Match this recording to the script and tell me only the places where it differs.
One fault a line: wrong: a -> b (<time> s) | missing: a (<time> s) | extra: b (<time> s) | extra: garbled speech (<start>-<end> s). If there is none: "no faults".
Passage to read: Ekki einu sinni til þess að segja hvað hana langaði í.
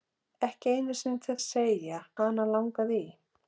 missing: þess (1.4 s)
missing: hvað (2.0 s)